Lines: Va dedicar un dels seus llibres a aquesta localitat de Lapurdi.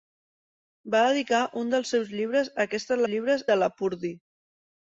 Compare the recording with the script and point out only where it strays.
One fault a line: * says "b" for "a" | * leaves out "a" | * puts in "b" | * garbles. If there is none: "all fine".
* says "llibres" for "localitat"